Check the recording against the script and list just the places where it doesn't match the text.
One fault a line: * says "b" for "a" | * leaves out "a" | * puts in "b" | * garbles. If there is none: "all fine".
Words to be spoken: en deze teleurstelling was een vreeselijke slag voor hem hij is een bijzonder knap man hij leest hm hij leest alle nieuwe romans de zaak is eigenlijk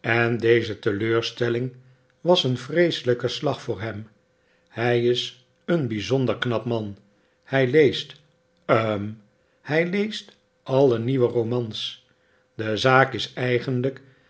all fine